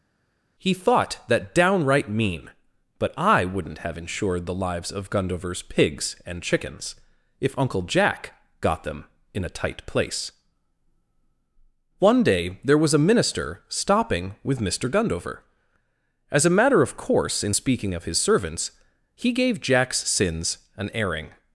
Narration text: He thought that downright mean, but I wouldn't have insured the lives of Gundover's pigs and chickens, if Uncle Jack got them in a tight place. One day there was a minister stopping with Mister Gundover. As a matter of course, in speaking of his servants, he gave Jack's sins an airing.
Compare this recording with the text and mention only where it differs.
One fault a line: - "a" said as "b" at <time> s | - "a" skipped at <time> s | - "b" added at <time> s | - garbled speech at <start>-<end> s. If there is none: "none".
none